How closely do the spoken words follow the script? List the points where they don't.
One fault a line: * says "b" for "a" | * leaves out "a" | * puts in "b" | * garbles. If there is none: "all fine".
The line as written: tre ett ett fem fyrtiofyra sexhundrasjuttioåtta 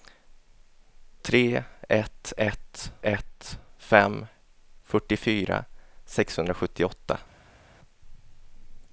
* puts in "ett"